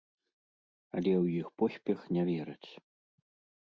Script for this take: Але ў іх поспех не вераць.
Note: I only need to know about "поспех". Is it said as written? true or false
true